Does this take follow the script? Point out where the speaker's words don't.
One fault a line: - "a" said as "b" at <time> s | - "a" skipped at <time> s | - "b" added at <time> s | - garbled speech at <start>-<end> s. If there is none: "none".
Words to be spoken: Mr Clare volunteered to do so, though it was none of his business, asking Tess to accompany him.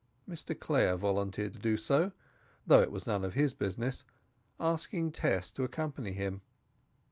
none